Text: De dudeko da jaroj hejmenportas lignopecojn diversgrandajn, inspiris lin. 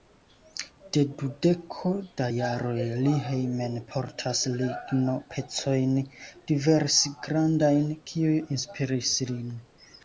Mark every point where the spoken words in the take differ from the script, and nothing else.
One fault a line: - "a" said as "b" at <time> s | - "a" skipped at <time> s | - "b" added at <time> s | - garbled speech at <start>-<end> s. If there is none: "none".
- "li" added at 3.1 s
- "kiuj" added at 8.1 s